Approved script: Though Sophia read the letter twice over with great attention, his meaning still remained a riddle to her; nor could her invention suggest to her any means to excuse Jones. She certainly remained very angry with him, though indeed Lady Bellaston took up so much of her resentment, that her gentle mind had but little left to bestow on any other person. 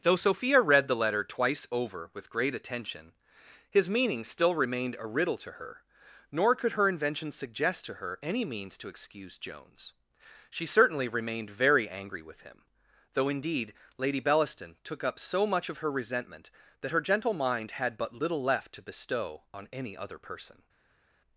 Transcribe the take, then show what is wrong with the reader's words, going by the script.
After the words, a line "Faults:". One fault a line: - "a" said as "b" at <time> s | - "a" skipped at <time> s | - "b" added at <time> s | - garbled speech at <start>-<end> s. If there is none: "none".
Though Sophia read the letter twice over with great attention, his meaning still remained a riddle to her; nor could her invention suggest to her any means to excuse Jones. She certainly remained very angry with him, though indeed Lady Bellaston took up so much of her resentment, that her gentle mind had but little left to bestow on any other person.
Faults:
none